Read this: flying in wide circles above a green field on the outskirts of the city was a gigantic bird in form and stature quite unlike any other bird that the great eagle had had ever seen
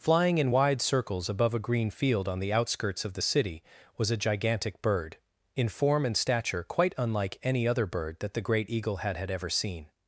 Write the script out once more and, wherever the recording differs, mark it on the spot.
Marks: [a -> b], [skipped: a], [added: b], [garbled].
flying in wide circles above a green field on the outskirts of the city was a gigantic bird in form and stature quite unlike any other bird that the great eagle had had ever seen